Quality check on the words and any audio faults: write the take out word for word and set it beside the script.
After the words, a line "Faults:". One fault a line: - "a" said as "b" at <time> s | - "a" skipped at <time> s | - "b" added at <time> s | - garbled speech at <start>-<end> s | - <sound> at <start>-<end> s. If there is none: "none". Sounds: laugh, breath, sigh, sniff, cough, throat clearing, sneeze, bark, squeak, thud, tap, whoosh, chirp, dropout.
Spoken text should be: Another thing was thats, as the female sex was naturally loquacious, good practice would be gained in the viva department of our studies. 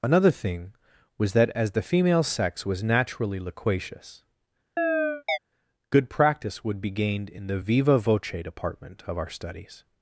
Another thing was that, as the female sex was naturally loquacious, good practice would be gained in the viva voce department of our studies.
Faults:
- "thats" said as "that" at 1.3 s
- chirp at 4.8-5.4 s
- "voce" added at 8.0 s